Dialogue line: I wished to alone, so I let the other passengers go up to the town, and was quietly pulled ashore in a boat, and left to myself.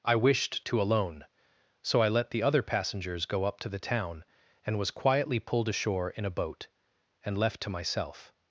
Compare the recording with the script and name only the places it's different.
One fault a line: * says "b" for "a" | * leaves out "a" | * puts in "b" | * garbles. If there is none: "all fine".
all fine